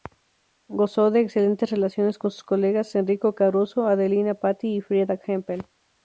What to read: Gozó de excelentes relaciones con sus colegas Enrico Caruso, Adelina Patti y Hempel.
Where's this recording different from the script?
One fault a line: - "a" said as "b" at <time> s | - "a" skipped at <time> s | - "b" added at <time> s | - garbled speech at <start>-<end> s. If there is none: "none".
- "Frieda" added at 4.8 s